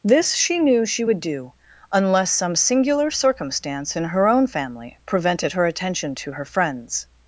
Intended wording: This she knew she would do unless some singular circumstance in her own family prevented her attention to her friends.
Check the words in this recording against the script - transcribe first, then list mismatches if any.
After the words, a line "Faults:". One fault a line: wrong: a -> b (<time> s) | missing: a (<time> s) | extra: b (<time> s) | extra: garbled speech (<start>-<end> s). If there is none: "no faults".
This she knew she would do unless some singular circumstance in her own family prevented her attention to her friends.
Faults:
no faults